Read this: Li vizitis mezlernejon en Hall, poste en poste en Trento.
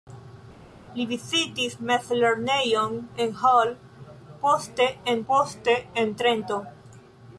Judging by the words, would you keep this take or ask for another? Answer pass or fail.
pass